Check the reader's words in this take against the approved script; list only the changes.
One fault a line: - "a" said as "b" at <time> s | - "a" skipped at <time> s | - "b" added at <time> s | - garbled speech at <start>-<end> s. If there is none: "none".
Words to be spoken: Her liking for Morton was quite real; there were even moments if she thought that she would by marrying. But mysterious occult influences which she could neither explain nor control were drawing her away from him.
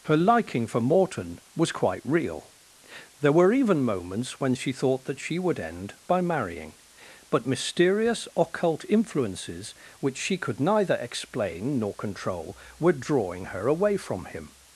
- "if" said as "when" at 4.4 s
- "end" added at 5.6 s